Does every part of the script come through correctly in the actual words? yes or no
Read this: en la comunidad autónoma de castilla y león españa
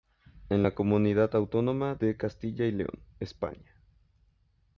yes